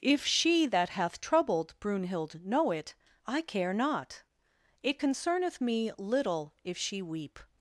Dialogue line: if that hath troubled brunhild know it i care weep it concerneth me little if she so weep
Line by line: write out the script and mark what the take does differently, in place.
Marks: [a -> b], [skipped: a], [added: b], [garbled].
if [added: she] that hath troubled brunhild know it i care [weep -> not] it concerneth me little if she [skipped: so] weep